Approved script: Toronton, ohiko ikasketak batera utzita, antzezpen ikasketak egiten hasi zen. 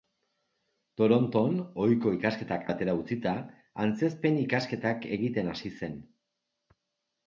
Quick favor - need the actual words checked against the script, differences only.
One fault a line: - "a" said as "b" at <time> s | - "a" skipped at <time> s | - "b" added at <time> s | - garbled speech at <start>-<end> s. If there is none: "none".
none